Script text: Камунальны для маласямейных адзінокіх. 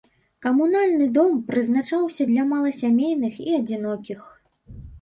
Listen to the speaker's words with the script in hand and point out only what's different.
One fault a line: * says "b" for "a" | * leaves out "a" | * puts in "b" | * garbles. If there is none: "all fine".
* puts in "дом прызначаўся"
* puts in "і"